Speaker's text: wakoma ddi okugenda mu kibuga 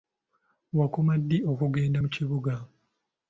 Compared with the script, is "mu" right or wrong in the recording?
right